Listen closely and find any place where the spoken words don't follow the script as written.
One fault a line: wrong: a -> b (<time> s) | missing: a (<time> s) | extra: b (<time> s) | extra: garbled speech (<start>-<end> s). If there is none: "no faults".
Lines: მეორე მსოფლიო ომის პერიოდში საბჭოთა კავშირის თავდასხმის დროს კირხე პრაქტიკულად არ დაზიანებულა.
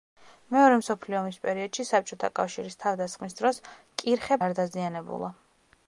missing: პრაქტიკულად (4.4 s)